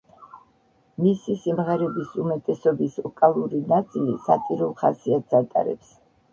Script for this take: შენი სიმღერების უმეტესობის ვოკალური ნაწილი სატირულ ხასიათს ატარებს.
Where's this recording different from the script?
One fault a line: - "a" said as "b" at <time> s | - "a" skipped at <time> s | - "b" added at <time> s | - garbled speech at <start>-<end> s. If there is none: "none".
- "შენი" said as "მისი" at 1.0 s